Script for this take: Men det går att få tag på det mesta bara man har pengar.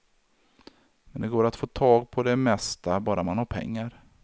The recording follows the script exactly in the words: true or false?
true